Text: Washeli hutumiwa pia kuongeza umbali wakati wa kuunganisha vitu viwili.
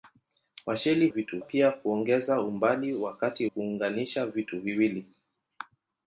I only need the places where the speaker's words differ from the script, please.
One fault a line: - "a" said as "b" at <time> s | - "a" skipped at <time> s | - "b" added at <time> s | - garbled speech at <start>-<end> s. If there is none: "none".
- "hutumiwa" said as "vitu" at 1.1 s
- "wa" skipped at 3.5 s